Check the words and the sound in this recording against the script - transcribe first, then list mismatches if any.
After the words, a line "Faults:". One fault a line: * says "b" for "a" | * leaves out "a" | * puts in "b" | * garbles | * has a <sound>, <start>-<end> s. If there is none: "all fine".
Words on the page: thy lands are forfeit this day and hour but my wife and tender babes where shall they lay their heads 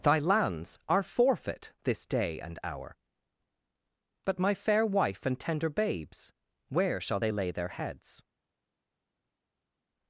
thy lands are forfeit this day and hour but my fair wife and tender babes where shall they lay their heads
Faults:
* puts in "fair"